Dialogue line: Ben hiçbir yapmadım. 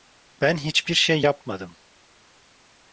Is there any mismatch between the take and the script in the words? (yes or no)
yes